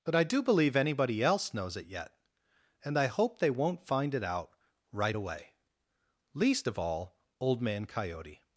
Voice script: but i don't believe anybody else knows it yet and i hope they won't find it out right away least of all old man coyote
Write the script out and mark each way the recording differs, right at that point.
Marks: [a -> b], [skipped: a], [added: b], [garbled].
but i [don't -> do] believe anybody else knows it yet and i hope they won't find it out right away least of all old man coyote